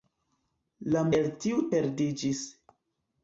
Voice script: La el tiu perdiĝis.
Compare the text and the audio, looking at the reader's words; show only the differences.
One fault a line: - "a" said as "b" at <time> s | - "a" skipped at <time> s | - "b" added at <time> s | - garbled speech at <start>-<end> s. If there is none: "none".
none